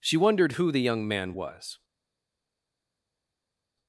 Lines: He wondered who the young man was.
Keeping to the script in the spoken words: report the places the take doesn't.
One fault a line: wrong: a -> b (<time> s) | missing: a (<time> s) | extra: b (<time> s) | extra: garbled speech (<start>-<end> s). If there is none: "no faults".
wrong: He -> She (0.0 s)